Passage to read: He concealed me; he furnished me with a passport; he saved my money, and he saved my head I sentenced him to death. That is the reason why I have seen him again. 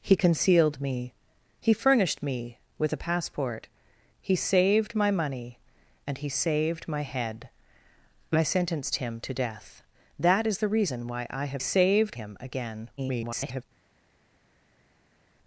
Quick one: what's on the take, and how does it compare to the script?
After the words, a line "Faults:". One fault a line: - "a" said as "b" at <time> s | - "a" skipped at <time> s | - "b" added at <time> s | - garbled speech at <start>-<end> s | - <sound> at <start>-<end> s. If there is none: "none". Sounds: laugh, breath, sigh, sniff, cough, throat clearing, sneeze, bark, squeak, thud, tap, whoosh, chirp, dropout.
He concealed me; he furnished me with a passport; he saved my money, and he saved my head I sentenced him to death. That is the reason why I have saved him again. [garbled]
Faults:
- "seen" said as "saved" at 11.6 s
- garbled speech at 13.0-13.6 s